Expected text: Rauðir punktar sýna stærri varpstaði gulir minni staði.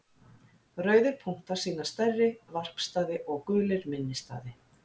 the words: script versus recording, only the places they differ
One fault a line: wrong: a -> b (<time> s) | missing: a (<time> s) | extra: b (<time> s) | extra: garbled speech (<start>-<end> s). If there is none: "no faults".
extra: og (3.4 s)